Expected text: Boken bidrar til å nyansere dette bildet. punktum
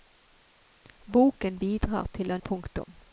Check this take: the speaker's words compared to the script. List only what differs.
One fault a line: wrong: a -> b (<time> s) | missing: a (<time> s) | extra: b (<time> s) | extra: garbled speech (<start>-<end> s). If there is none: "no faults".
missing: nyansere dette bildet (2.4 s)